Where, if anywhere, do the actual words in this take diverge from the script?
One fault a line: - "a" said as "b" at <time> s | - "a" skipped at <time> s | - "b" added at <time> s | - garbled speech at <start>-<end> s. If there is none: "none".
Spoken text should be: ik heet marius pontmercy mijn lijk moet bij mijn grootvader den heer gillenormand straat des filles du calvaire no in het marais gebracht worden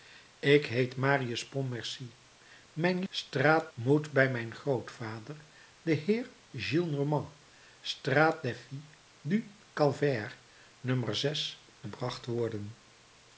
- "lijk" said as "straat" at 3.1 s
- "in het marais" skipped at 11.0 s